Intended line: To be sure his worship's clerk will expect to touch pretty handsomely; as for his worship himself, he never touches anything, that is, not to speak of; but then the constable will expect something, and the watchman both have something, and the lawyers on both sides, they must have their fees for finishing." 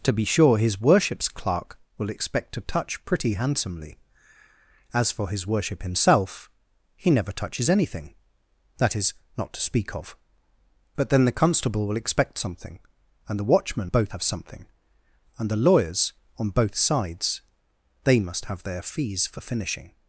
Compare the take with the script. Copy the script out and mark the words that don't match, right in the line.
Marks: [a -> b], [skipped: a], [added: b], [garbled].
To be sure his worship's clerk will expect to touch pretty handsomely; as for his worship himself, he never touches anything, that is, not to speak of; but then the constable will expect something, and the watchman both have something, and the lawyers on both sides, they must have their fees for finishing."